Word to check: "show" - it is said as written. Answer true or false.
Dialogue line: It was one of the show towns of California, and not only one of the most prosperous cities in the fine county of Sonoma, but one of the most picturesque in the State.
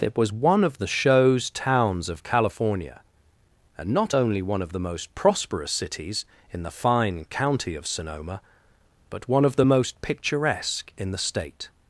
false